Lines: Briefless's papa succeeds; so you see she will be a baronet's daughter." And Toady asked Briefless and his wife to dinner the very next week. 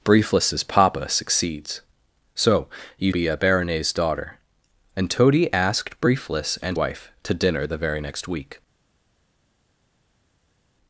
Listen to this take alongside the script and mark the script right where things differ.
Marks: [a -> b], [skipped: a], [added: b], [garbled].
Briefless's papa succeeds; so you [skipped: see she will] be a baronet's daughter." And Toady asked Briefless and [skipped: his] wife to dinner the very next week.